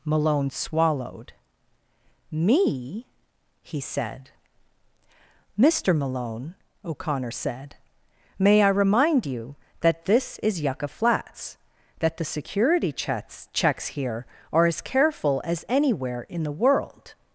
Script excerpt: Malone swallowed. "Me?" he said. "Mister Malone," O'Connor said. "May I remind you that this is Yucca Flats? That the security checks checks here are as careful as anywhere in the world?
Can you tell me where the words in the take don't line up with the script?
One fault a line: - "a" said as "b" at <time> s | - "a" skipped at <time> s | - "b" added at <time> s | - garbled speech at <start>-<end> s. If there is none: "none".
none